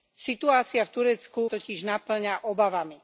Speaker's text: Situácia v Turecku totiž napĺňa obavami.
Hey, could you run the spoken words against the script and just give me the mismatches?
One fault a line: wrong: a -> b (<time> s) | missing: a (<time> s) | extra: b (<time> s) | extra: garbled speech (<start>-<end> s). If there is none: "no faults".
no faults